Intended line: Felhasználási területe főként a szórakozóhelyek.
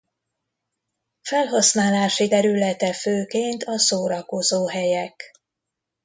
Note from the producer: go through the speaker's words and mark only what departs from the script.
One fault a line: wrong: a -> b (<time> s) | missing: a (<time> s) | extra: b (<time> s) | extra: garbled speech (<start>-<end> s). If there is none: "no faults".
no faults